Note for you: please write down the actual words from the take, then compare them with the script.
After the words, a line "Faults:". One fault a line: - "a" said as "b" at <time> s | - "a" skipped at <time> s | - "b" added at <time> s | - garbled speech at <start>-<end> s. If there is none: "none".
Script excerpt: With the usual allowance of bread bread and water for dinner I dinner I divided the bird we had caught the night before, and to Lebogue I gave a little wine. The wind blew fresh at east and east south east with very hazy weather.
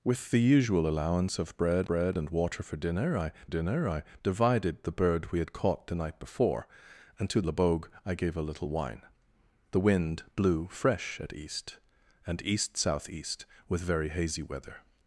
With the usual allowance of bread bread and water for dinner I dinner I divided the bird we had caught the night before, and to Lebogue I gave a little wine. The wind blew fresh at east and east south east with very hazy weather.
Faults:
none